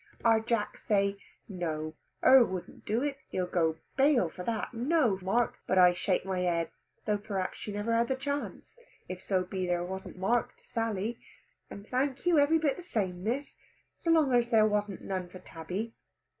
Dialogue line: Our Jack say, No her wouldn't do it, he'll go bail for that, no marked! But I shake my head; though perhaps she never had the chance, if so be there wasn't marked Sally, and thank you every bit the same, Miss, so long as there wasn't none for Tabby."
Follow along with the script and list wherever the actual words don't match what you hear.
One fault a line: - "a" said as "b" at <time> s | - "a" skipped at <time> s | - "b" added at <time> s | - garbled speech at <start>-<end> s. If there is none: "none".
none